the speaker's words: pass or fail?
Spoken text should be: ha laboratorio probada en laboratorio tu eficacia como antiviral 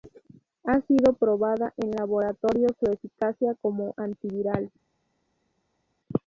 fail